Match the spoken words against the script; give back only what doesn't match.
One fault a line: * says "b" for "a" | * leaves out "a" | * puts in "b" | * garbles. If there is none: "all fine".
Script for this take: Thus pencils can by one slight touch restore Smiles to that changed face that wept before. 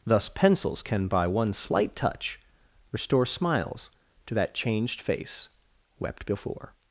* leaves out "that"